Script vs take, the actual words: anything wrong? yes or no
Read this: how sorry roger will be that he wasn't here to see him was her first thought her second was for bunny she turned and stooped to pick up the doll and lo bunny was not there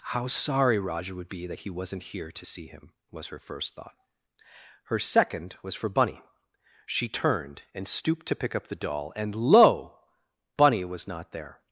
yes